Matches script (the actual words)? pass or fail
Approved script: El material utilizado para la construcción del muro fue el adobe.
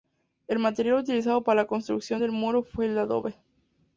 pass